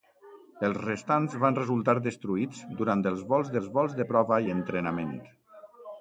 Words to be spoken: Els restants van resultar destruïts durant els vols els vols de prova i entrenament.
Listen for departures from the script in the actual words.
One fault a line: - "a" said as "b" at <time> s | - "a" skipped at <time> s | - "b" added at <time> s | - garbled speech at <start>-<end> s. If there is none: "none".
none